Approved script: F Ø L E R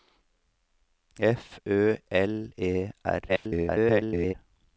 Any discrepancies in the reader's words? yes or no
yes